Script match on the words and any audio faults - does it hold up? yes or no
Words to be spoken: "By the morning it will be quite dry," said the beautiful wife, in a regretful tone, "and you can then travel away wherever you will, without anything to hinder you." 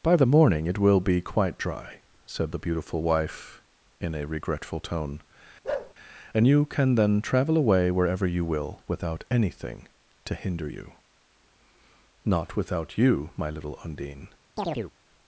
no